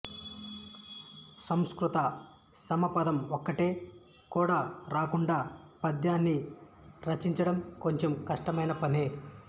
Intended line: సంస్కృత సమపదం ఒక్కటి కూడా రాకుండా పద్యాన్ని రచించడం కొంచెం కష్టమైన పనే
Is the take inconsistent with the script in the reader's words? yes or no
no